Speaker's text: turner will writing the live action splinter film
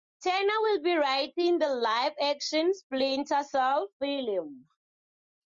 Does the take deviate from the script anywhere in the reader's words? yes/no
yes